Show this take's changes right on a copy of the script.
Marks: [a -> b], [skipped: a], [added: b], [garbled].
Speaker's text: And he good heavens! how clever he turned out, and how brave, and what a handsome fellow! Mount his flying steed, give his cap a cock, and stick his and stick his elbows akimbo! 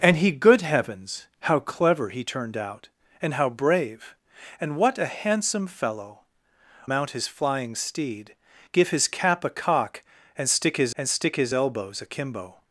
And he good heavens! how clever he turned out, and how brave, and what a handsome fellow! Mount his flying steed, give his cap a cock, and stick his and stick his elbows akimbo!